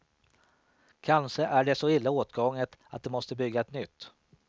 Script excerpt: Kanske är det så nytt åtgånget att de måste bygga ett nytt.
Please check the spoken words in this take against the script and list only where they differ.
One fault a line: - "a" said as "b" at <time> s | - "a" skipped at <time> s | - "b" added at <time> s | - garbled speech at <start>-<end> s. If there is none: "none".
- "nytt" said as "illa" at 1.9 s